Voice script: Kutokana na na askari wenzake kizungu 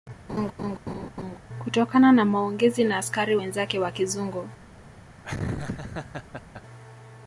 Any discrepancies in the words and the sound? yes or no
yes